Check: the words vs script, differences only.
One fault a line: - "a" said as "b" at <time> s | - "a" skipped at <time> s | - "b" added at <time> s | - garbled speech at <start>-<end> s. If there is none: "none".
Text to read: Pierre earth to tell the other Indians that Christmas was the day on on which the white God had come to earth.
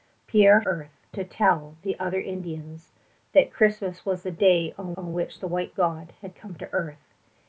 none